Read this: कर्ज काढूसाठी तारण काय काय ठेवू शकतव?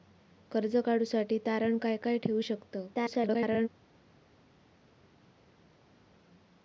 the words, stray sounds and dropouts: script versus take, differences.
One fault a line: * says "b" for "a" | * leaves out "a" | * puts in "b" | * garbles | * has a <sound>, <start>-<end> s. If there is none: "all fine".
* garbles